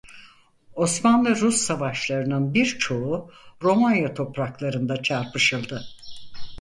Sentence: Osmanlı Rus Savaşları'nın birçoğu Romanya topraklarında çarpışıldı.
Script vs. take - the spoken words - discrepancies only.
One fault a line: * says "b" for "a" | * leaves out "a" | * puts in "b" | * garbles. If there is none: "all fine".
all fine